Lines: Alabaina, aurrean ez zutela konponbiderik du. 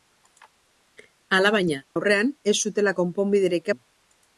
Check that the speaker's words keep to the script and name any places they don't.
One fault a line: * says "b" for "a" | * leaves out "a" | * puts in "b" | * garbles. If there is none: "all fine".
all fine